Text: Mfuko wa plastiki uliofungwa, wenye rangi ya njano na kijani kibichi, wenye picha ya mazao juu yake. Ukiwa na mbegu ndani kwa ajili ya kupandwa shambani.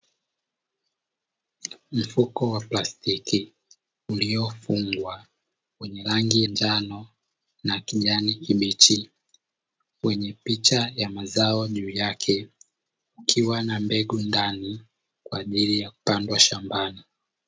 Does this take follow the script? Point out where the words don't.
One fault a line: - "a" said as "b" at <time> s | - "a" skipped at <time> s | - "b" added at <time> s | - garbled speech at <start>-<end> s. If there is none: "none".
- "ya" skipped at 6.4 s